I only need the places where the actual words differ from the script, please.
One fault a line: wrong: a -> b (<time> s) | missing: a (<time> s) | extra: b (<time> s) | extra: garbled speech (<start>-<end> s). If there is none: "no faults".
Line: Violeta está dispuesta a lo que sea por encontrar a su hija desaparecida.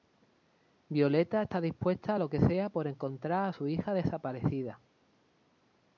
no faults